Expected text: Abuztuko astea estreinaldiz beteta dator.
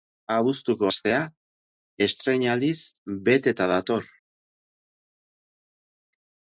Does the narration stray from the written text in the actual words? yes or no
no